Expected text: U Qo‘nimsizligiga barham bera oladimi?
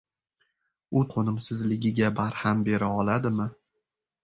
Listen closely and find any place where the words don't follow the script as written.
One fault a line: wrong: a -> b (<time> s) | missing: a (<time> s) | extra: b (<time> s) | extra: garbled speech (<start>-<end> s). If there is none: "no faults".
no faults